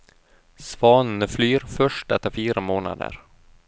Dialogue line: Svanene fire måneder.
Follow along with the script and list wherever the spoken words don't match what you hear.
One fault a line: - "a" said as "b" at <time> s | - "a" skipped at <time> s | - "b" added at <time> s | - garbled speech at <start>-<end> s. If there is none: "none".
- "flyr først etter" added at 1.3 s